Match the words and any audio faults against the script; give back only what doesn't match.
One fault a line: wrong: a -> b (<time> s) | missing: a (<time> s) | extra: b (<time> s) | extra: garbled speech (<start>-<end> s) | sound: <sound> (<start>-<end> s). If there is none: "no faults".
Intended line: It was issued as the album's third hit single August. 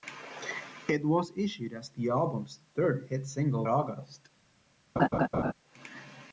sound: laugh (5.0-5.5 s)